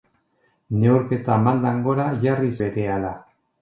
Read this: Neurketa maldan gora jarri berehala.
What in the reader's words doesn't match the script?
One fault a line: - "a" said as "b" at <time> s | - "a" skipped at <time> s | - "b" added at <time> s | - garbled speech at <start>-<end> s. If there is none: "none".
none